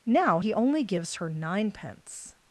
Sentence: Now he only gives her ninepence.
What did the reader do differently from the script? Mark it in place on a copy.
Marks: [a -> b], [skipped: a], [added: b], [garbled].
Now he only gives her ninepence.